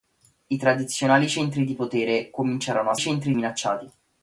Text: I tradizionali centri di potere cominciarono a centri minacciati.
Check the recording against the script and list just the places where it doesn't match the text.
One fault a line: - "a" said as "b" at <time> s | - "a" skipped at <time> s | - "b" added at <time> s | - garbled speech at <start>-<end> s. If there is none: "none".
none